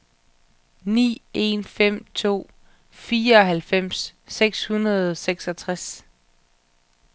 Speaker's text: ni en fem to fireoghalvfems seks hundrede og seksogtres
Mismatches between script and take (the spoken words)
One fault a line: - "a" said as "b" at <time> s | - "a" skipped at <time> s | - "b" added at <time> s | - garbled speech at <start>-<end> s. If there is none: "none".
none